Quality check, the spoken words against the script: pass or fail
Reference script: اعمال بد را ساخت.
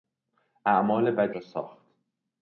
pass